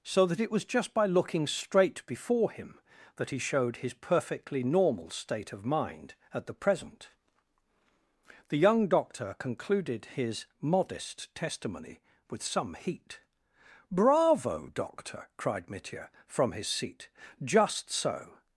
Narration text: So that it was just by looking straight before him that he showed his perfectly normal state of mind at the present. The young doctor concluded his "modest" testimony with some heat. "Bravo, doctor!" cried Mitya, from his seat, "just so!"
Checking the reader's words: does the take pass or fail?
pass